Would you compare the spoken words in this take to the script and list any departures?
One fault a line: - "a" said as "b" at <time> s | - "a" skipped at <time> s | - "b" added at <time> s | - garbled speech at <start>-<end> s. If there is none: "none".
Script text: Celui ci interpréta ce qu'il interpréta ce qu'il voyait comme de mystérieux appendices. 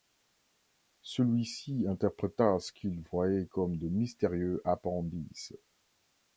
- "interpréta ce qu'il" skipped at 3.0 s